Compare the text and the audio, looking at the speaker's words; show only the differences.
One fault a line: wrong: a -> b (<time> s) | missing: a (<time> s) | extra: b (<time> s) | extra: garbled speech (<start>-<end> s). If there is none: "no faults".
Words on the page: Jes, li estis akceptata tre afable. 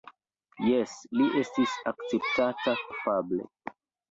missing: tre (2.8 s)